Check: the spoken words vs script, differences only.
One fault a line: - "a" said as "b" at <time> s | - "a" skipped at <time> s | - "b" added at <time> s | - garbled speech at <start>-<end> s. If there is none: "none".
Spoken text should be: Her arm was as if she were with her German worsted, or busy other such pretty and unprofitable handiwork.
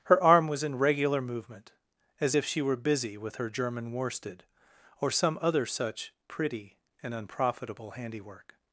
- "in regular movement" added at 0.6 s
- "busy" added at 2.8 s
- "busy" said as "some" at 5.1 s